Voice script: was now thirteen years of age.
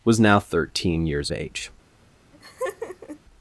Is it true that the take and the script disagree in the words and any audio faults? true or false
true